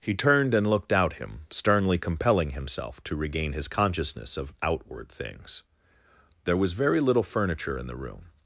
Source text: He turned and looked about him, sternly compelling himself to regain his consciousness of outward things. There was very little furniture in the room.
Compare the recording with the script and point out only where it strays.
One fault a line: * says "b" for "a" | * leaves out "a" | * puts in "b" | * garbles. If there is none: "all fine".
* says "out" for "about"